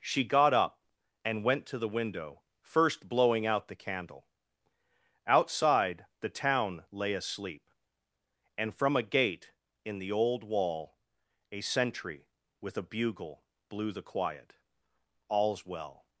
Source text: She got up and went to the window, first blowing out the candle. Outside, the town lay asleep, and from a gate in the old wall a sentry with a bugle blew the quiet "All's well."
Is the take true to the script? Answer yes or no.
yes